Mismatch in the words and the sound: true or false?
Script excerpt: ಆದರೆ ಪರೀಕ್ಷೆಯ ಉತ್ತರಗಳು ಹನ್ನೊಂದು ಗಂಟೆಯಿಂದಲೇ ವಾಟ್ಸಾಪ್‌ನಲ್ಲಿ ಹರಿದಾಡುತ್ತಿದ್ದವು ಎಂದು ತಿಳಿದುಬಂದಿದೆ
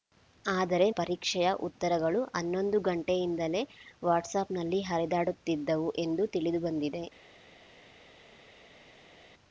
false